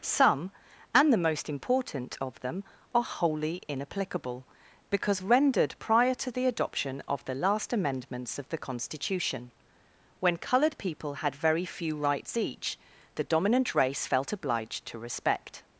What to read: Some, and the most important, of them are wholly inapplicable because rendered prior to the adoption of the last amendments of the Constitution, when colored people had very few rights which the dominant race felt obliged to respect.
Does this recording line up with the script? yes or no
no